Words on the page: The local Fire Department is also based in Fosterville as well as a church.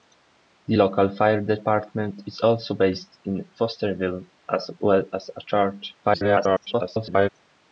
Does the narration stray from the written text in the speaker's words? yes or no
yes